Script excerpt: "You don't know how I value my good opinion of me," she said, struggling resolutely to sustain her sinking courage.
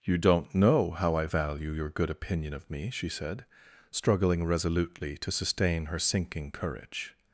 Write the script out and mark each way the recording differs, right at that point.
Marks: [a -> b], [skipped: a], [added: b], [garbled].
"You don't know how I value [my -> your] good opinion of me," she said, struggling resolutely to sustain her sinking courage.